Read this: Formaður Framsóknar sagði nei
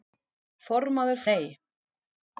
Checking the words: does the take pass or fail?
fail